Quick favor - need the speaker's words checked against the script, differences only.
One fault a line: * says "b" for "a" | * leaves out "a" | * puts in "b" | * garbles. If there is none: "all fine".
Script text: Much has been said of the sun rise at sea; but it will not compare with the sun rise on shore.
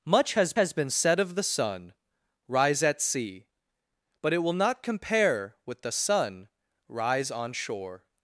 * puts in "has"